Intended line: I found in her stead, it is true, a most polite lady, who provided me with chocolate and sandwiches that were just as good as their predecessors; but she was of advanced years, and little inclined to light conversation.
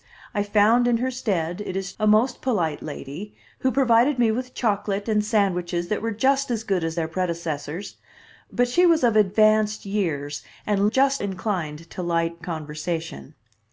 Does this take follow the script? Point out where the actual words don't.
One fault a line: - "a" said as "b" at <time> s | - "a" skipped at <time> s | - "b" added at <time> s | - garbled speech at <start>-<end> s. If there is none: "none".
- "true" skipped at 1.9 s
- "little" said as "just" at 10.8 s